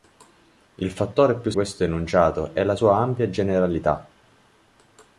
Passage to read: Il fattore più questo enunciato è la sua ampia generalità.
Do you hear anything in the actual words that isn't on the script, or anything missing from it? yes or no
no